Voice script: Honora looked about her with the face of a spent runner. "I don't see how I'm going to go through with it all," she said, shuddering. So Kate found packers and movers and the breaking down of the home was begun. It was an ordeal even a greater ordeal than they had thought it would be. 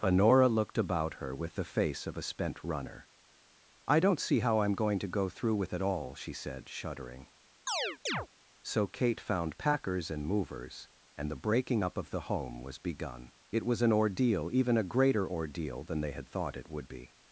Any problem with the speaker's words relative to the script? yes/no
yes